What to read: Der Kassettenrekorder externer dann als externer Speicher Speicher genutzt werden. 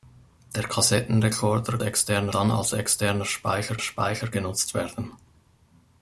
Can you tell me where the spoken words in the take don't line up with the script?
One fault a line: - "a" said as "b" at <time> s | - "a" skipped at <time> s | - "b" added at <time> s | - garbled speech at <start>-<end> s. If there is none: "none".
none